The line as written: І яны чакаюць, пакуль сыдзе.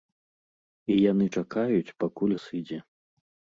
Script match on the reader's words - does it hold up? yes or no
yes